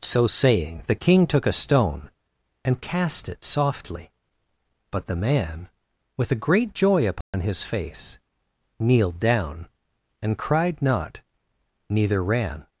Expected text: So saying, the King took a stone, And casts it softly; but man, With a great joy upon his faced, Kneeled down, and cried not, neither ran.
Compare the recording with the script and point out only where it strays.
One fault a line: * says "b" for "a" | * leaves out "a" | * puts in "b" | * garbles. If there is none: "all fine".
* says "cast" for "casts"
* puts in "the"
* says "face" for "faced"